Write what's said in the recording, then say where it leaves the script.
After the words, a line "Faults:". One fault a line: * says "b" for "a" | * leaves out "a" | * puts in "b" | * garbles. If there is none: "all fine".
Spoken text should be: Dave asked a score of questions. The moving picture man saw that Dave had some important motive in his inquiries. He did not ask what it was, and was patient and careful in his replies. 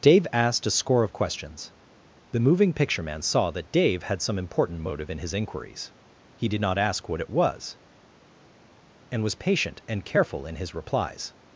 Dave asked a score of questions. The moving picture man saw that Dave had some important motive in his inquiries. He did not ask what it was, and was patient and careful in his replies.
Faults:
all fine